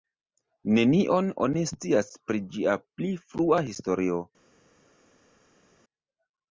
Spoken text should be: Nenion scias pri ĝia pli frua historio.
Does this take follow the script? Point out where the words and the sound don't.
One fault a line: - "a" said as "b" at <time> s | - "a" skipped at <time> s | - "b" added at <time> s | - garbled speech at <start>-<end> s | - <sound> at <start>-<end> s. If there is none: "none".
- "oni" added at 1.5 s